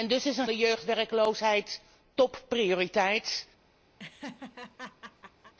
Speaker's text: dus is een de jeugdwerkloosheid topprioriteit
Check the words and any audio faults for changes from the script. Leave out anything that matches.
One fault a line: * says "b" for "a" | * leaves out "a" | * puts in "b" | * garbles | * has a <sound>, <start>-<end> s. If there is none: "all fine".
* has a laugh, 4.0-5.5 s